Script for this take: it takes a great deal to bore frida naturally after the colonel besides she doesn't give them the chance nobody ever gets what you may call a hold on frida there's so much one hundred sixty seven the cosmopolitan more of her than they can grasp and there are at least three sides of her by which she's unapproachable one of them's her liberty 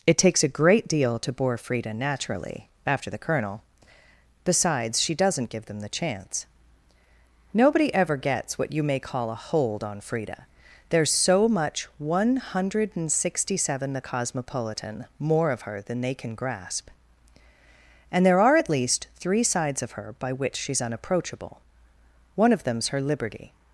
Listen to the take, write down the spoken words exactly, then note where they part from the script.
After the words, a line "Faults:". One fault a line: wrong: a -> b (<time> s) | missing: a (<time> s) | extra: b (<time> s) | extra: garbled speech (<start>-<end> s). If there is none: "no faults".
it takes a great deal to bore frida naturally after the colonel besides she doesn't give them the chance nobody ever gets what you may call a hold on frida there's so much one hundred sixty seven the cosmopolitan more of her than they can grasp and there are at least three sides of her by which she's unapproachable one of them's her liberty
Faults:
no faults